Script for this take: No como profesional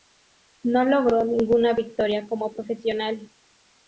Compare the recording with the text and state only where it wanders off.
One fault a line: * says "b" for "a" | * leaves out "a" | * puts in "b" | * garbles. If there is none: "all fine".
* puts in "logró ninguna victoria"